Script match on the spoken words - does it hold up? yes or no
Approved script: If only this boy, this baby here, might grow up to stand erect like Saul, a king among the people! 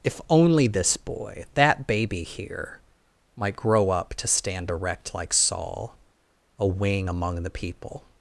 no